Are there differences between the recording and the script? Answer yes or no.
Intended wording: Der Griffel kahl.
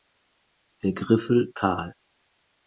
no